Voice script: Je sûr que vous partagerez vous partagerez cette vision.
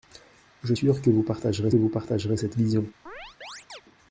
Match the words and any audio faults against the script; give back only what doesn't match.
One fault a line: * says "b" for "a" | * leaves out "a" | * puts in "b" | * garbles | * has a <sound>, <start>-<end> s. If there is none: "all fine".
* has a chirp, 3.1-3.8 s